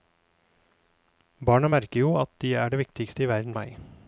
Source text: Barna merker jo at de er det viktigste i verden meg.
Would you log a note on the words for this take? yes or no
no